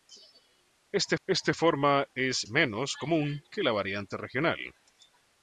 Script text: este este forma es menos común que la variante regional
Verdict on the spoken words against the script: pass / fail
pass